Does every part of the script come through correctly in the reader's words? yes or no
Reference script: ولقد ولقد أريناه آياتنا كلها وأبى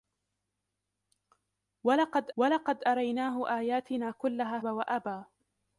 yes